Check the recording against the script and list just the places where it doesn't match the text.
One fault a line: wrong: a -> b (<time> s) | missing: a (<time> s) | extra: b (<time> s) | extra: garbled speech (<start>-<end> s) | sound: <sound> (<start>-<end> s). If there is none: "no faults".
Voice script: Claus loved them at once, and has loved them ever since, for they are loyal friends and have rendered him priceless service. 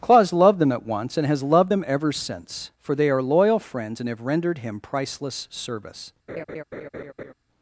sound: laugh (6.3-7.3 s)